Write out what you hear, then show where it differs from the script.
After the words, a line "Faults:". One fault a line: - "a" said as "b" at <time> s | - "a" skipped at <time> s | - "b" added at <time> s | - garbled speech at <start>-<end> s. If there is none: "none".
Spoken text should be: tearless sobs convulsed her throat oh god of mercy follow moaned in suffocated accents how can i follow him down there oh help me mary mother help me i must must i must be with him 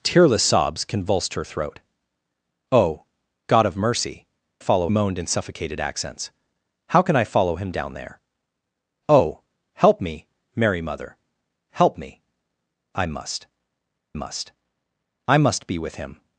tearless sobs convulsed her throat oh god of mercy follow moaned in suffocated accents how can i follow him down there oh help me mary mother help me i must must i must be with him
Faults:
none